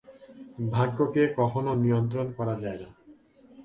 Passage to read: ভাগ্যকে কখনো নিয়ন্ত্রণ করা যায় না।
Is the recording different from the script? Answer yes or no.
no